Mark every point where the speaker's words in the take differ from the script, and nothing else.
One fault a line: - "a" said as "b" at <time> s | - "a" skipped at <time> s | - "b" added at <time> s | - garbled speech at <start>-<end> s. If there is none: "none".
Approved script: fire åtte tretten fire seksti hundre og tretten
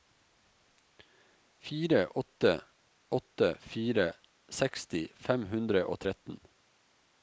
- "tretten" said as "åtte" at 3.1 s
- "fem" added at 5.3 s